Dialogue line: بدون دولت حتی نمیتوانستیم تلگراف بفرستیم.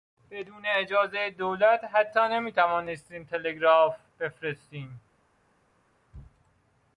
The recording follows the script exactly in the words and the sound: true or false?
false